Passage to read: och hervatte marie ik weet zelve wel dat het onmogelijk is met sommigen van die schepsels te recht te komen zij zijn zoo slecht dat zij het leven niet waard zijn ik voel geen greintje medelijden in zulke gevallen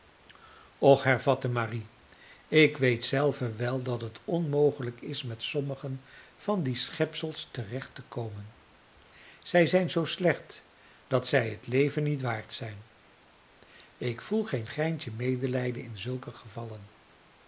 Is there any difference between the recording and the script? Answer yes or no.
no